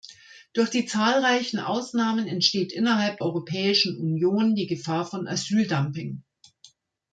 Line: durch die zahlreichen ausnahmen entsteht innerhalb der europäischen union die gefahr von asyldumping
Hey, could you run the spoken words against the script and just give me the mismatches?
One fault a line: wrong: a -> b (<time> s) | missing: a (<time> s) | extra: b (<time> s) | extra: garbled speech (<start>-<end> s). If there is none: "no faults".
missing: der (3.2 s)